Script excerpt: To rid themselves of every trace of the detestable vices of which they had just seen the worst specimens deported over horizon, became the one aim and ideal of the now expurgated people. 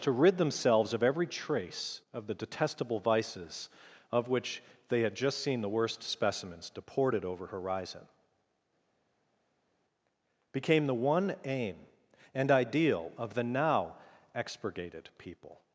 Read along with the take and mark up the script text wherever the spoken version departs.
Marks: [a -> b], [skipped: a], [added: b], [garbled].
To rid themselves of every trace of the detestable vices of which they had just seen the worst specimens deported over horizon, became the one aim and ideal of the now expurgated people.